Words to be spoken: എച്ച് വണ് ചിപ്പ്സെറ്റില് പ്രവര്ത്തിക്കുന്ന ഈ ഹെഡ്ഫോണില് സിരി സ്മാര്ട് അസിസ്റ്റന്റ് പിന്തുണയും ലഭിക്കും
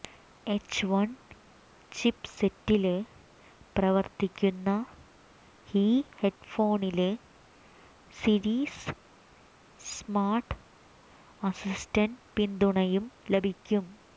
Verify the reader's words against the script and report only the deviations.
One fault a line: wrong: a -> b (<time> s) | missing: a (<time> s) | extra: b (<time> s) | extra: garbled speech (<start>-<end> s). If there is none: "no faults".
no faults